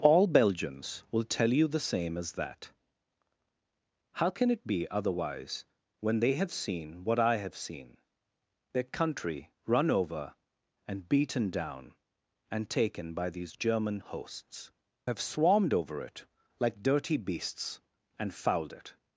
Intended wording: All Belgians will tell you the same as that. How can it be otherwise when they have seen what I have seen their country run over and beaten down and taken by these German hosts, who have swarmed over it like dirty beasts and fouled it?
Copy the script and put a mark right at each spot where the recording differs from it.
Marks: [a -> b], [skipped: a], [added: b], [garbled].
All Belgians will tell you the same as that. How can it be otherwise when they have seen what I have seen their country run over and beaten down and taken by these German hosts, [skipped: who] have swarmed over it like dirty beasts and fouled it?